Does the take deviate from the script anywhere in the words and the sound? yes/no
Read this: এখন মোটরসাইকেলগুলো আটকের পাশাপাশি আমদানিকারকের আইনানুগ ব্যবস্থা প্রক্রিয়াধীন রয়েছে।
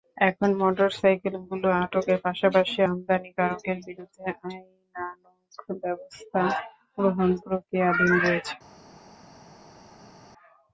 yes